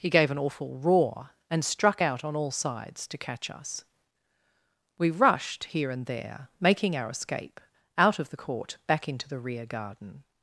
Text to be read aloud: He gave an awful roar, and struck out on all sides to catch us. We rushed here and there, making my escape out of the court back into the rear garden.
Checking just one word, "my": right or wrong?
wrong